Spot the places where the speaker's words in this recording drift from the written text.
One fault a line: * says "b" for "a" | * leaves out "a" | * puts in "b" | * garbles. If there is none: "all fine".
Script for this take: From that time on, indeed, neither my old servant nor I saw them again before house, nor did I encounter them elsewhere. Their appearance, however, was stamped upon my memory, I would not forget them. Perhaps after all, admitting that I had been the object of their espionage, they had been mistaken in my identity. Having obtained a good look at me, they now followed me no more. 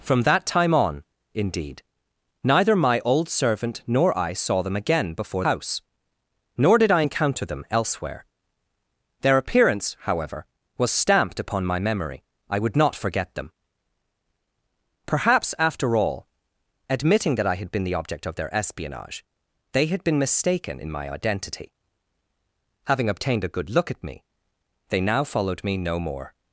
all fine